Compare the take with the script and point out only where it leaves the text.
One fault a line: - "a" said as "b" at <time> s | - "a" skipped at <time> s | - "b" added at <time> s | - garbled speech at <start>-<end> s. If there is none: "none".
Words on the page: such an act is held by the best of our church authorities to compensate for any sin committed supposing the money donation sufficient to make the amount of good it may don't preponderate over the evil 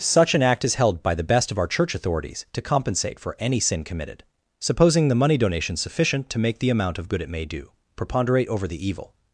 - "don't" said as "do" at 7.4 s